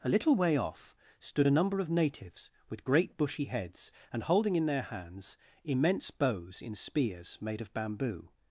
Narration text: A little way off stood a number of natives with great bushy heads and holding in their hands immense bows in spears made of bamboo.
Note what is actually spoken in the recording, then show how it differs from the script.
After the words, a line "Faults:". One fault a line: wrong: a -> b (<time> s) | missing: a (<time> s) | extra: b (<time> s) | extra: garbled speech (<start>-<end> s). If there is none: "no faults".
A little way off stood a number of natives with great bushy heads and holding in their hands immense bows in spears made of bamboo.
Faults:
no faults